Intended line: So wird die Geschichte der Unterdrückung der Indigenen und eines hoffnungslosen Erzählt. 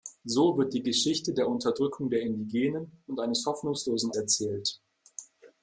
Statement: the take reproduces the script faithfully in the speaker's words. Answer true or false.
true